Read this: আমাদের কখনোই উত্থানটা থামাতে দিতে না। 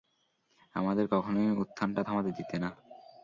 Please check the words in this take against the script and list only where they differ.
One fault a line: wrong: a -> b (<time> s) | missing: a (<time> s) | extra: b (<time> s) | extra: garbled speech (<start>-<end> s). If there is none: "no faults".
no faults